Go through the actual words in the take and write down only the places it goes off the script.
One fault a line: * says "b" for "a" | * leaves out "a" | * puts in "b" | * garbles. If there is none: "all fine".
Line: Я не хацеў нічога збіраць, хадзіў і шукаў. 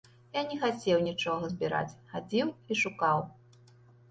all fine